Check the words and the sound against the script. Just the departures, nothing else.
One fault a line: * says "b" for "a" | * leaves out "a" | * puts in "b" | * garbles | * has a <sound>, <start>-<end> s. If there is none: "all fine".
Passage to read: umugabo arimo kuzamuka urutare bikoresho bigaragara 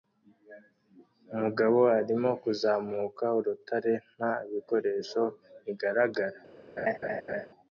* puts in "nta"
* has a laugh, 6.8-7.5 s